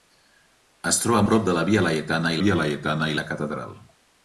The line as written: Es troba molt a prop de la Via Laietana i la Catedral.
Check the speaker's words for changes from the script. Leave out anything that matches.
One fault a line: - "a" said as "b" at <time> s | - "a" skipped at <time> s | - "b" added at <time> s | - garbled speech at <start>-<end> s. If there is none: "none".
- "molt" skipped at 1.2 s
- "Via Laietana" added at 2.5 s